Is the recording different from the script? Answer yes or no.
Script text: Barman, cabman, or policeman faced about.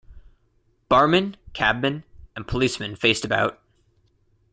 yes